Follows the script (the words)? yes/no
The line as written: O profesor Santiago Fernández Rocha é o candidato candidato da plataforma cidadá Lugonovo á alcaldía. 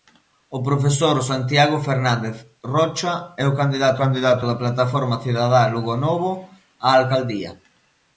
yes